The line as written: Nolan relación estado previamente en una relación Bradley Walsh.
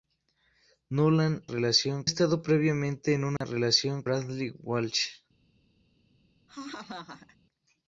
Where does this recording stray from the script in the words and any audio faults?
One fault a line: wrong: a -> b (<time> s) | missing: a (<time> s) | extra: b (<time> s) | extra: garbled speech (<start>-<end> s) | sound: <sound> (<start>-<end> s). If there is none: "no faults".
sound: dropout (3.4-3.4 s)
sound: laugh (6.5-7.4 s)